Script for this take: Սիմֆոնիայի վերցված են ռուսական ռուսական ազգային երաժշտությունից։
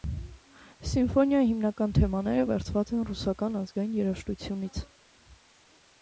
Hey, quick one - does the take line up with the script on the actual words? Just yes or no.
no